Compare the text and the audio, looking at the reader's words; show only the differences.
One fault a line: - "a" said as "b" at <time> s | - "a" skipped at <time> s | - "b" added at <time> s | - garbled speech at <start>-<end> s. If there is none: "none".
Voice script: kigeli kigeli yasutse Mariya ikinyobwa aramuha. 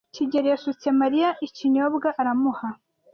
- "kigeli" skipped at 0.5 s